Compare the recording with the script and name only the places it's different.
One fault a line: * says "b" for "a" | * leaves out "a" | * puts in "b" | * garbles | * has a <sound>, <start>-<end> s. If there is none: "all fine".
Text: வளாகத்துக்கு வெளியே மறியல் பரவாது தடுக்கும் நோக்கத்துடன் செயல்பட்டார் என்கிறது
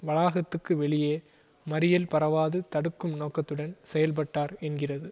all fine